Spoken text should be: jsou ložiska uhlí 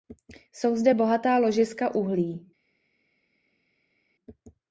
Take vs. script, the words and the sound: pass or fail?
fail